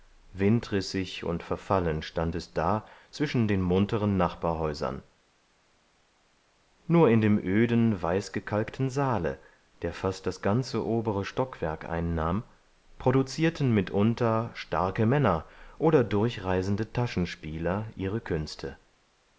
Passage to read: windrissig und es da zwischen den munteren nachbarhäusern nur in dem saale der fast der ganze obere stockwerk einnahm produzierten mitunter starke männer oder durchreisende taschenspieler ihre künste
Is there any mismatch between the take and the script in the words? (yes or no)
yes